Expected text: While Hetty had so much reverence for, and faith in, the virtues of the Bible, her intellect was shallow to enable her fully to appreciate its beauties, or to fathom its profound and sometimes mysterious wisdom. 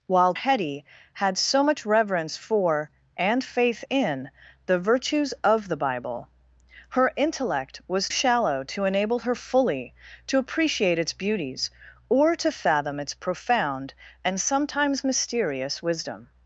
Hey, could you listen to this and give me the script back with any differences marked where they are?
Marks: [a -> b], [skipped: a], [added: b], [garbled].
While Hetty had so much reverence for, and faith in, the virtues of the Bible, her intellect was shallow to enable her fully to appreciate its beauties, or to fathom its profound and sometimes mysterious wisdom.